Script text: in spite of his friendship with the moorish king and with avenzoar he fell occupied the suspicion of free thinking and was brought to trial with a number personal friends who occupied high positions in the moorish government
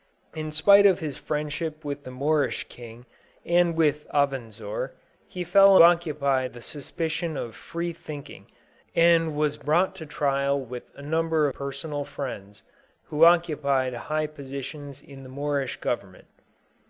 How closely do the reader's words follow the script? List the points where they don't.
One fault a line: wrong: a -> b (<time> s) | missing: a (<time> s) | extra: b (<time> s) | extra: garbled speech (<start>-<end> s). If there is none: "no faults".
no faults